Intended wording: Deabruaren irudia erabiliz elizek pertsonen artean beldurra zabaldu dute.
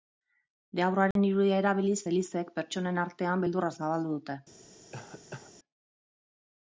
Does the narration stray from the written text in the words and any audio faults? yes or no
yes